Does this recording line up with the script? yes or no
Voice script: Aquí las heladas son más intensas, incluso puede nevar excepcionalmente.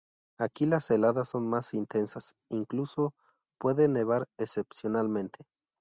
yes